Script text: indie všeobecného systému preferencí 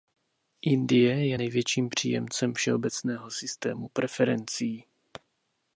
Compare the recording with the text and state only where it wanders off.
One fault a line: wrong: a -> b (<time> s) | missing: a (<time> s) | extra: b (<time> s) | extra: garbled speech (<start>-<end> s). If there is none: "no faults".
extra: je největším příjemcem (1.3 s)